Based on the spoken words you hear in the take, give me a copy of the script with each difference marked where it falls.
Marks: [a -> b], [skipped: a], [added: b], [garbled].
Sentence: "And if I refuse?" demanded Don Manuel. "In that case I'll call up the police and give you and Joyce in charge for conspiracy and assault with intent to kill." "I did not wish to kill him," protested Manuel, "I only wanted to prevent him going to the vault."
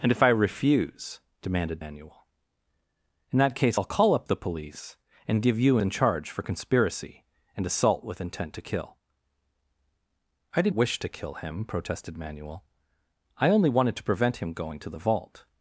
"And if I refuse?" demanded [skipped: Don] Manuel. "In that case I'll call up the police and give you [skipped: and Joyce] in charge for conspiracy and assault with intent to kill." "I did [skipped: not] wish to kill him," protested Manuel, "I only wanted to prevent him going to the vault."